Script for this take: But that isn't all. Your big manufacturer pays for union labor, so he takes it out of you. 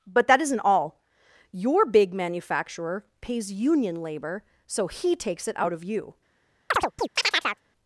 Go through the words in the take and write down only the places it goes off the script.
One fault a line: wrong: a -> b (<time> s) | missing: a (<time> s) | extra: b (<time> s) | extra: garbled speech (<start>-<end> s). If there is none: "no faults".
missing: for (3.5 s)